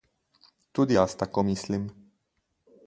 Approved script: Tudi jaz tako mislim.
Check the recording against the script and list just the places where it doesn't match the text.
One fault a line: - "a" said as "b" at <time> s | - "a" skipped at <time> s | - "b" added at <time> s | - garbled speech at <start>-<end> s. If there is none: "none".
none